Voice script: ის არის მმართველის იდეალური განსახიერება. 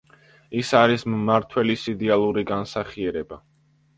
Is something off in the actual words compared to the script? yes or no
no